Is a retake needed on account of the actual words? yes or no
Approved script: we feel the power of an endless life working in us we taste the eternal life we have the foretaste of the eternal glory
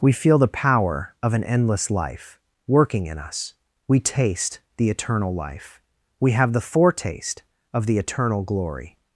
no